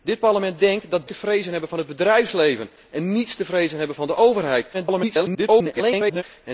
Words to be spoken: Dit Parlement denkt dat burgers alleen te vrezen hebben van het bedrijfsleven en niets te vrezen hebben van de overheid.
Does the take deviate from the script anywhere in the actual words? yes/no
yes